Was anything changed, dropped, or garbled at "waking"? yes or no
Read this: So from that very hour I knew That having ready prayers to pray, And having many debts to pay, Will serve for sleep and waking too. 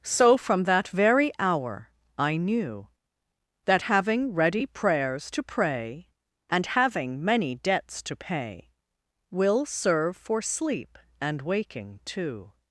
no